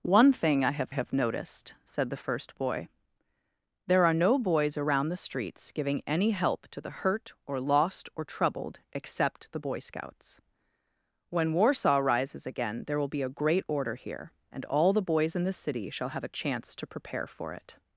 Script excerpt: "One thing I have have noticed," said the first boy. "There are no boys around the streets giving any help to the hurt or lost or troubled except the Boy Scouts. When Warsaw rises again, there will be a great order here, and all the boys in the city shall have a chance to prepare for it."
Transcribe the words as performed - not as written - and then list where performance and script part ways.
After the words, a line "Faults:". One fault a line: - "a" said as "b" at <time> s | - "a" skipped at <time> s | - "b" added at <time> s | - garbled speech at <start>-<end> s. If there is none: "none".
"One thing I have have noticed," said the first boy. "There are no boys around the streets giving any help to the hurt or lost or troubled except the Boy Scouts. When Warsaw rises again, there will be a great order here, and all the boys in the city shall have a chance to prepare for it."
Faults:
none